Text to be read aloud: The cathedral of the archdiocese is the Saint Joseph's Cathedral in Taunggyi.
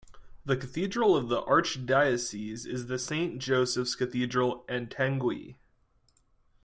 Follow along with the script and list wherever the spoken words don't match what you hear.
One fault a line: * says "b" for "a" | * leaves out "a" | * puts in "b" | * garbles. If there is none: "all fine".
all fine